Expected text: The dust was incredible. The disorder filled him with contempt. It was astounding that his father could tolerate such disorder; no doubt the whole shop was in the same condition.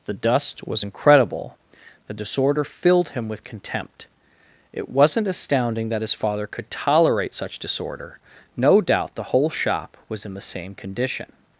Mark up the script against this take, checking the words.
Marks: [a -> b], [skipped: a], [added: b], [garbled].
The dust was incredible. The disorder filled him with contempt. It [was -> wasn't] astounding that his father could tolerate such disorder; no doubt the whole shop was in the same condition.